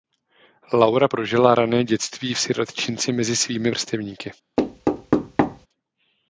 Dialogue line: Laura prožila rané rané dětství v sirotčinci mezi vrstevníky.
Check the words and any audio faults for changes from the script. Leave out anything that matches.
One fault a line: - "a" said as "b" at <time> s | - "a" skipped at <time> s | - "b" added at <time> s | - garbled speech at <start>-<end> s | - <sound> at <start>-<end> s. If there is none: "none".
- "rané" skipped at 1.8 s
- "svými" added at 3.3 s
- thud at 4.6-5.7 s